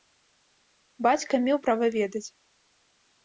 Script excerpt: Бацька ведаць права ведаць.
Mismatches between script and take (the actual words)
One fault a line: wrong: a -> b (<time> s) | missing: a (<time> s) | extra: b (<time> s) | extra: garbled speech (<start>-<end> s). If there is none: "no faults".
wrong: ведаць -> меў (1.4 s)